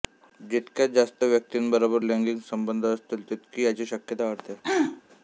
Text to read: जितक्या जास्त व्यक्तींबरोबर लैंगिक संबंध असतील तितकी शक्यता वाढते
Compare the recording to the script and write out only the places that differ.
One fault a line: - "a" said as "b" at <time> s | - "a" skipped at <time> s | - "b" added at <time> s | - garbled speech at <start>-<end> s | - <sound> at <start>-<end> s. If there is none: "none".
- "याची" added at 3.6 s
- throat clearing at 4.6-5.0 s